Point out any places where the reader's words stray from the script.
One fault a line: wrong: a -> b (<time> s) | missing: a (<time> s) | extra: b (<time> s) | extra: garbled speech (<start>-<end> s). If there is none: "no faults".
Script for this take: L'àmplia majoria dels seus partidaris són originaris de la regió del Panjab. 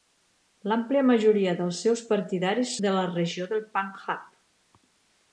missing: són originaris (2.7 s)